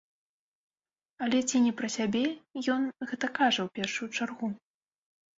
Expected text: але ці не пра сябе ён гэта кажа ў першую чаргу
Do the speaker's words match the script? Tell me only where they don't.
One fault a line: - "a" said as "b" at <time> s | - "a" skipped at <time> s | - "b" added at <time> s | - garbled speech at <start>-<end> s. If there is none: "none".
none